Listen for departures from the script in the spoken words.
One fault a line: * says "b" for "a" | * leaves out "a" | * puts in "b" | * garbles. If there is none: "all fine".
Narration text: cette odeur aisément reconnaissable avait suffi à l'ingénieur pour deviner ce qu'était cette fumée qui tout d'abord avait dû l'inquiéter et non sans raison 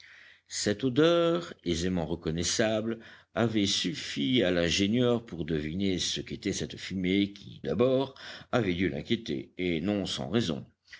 * leaves out "tout"